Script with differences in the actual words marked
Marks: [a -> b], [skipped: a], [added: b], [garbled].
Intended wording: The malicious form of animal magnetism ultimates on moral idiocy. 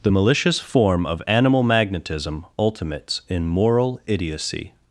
The malicious form of animal magnetism ultimates [on -> in] moral idiocy.